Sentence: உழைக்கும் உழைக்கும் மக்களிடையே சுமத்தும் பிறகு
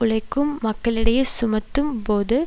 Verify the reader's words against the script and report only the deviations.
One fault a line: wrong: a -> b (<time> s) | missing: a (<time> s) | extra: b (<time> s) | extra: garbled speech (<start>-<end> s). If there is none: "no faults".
missing: உழைக்கும் (0.5 s)
wrong: பிறகு -> போது (2.0 s)